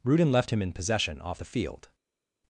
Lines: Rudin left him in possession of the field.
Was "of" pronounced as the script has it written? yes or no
no